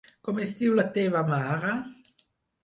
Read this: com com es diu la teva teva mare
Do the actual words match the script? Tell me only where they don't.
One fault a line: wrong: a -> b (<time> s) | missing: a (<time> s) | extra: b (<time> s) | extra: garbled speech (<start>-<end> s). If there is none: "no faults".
missing: com (0.4 s)
missing: teva (1.2 s)